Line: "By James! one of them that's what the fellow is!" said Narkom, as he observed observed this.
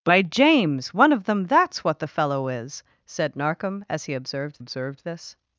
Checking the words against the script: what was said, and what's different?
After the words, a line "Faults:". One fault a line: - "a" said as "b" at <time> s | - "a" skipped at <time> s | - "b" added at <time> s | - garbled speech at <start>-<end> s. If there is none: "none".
"By James! one of them that's what the fellow is!" said Narkom, as he observed observed this.
Faults:
none